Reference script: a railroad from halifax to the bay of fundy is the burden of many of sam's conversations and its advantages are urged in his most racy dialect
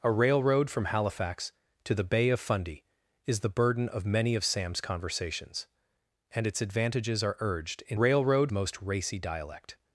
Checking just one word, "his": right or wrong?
wrong